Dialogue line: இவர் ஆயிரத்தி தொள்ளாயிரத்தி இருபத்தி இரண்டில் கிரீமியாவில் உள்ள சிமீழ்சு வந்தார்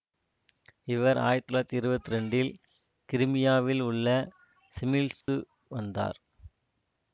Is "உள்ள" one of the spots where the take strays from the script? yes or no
no